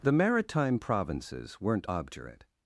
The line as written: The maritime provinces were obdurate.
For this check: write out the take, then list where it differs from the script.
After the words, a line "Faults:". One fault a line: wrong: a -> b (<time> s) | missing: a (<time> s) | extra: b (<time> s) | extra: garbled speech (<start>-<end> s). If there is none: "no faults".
The maritime provinces weren't obdurate.
Faults:
wrong: were -> weren't (1.6 s)